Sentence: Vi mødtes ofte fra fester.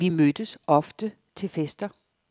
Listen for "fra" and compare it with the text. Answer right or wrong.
wrong